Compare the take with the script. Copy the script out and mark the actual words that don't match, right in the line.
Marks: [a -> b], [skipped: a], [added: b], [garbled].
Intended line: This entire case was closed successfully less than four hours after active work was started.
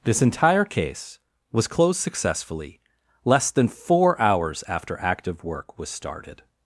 This entire case was closed successfully less than four hours after active work was started.